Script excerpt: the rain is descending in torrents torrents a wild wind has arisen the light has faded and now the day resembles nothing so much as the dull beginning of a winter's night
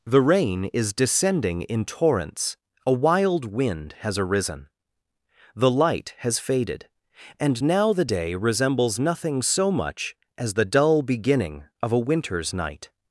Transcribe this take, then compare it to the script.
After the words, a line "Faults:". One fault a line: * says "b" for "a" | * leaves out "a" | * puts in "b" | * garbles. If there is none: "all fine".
the rain is descending in torrents a wild wind has arisen the light has faded and now the day resembles nothing so much as the dull beginning of a winter's night
Faults:
* leaves out "torrents"